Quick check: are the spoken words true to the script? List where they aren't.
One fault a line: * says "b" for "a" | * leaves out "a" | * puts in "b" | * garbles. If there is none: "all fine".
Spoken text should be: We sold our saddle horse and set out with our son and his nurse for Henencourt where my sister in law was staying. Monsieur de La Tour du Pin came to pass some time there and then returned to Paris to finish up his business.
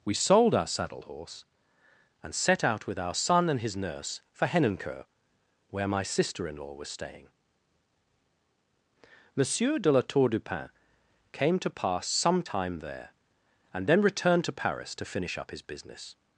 all fine